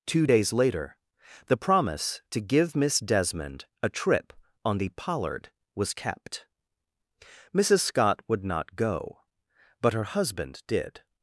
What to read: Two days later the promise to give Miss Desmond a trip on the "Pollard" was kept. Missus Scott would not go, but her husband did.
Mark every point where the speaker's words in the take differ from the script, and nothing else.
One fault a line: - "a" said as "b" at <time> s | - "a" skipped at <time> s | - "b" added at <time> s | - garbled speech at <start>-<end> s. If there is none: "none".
none